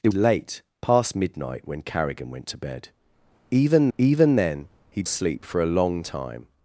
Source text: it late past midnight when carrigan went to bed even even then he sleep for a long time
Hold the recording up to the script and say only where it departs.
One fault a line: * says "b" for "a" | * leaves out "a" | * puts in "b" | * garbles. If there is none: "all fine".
all fine